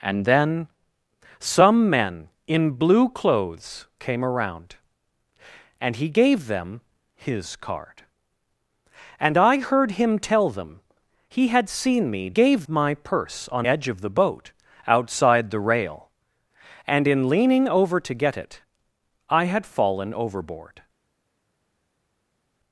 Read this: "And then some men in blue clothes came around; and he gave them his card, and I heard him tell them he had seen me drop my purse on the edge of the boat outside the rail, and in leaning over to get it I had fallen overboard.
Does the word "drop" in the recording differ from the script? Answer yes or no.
yes